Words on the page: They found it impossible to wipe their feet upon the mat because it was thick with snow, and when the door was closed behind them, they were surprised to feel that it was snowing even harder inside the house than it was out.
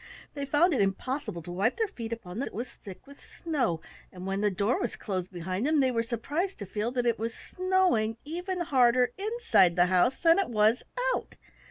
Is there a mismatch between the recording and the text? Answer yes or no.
yes